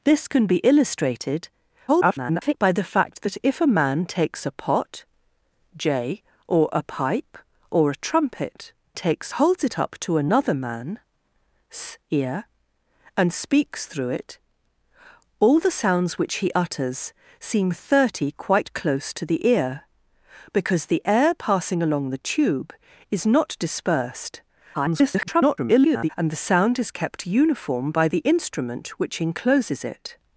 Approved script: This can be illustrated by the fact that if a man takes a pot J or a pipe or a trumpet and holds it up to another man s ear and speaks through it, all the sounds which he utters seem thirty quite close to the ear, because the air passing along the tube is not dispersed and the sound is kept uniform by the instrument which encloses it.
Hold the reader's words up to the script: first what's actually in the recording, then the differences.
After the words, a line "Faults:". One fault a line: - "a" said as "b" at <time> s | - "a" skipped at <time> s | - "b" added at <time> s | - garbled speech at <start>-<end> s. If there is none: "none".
This can be illustrated [garbled] by the fact that if a man takes a pot J or a pipe or a trumpet takes holds it up to another man s ear and speaks through it, all the sounds which he utters seem thirty quite close to the ear, because the air passing along the tube is not dispersed [garbled] and the sound is kept uniform by the instrument which encloses it.
Faults:
- garbled speech at 1.9-2.5 s
- "and" said as "takes" at 8.9 s
- garbled speech at 24.7-26.1 s